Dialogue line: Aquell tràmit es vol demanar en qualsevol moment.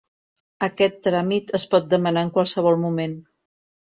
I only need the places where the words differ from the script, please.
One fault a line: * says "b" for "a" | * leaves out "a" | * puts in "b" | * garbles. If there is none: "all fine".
* says "Aquest" for "Aquell"
* says "pot" for "vol"